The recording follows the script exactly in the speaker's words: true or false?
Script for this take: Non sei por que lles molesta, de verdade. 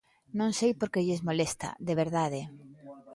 true